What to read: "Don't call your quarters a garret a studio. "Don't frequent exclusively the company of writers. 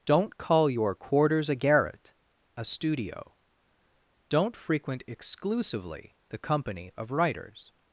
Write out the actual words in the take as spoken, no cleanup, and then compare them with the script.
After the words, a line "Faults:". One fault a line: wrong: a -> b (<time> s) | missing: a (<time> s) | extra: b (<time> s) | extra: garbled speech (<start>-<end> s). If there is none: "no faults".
"Don't call your quarters a garret a studio. "Don't frequent exclusively the company of writers.
Faults:
no faults